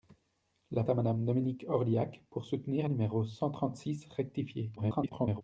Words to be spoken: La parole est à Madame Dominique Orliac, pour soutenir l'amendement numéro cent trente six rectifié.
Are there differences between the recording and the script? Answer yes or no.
yes